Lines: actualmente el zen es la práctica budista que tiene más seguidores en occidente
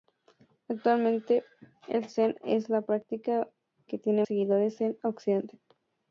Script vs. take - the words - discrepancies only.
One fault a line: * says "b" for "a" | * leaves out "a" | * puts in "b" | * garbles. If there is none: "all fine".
* leaves out "budista"
* leaves out "más"